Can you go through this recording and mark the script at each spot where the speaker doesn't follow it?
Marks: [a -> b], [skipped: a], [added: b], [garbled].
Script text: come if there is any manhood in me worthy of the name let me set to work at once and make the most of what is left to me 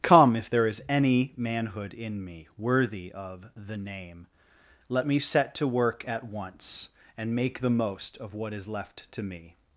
come if there is any manhood in me worthy of the name let me set to work at once and make the most of what is left to me